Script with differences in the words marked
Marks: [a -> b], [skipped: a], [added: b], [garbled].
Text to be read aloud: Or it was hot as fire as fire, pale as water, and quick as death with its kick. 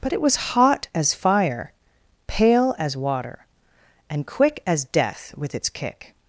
[Or -> But] it was hot as fire [skipped: as fire,] pale as water, and quick as death with its kick.